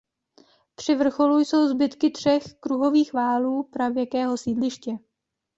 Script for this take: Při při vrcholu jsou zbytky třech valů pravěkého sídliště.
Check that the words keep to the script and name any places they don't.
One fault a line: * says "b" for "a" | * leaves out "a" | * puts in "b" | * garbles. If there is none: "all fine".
* leaves out "při"
* puts in "kruhových"